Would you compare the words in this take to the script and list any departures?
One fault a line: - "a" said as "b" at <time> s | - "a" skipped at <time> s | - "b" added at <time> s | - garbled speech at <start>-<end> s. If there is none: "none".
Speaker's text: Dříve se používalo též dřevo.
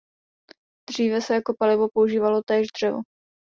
- "jako palivo" added at 1.3 s